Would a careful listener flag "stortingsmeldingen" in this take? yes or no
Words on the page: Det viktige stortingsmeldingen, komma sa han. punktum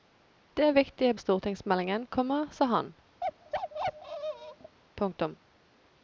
no